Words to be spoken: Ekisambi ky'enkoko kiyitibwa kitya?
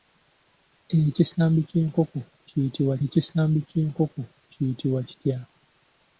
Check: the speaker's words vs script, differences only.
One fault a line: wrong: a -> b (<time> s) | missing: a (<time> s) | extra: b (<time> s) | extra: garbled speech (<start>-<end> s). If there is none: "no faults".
extra: ekisambi ky'enkoko kiyitibwa (3.0 s)